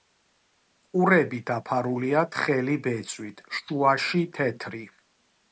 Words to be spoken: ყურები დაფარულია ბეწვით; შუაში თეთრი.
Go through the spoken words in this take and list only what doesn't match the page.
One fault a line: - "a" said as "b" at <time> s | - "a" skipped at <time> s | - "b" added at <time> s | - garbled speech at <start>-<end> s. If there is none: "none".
- "თხელი" added at 2.3 s